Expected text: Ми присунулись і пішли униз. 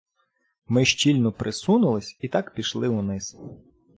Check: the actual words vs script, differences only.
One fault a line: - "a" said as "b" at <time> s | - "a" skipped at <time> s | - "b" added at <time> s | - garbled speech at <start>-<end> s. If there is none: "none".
- "щільно" added at 0.8 s
- "так" added at 2.3 s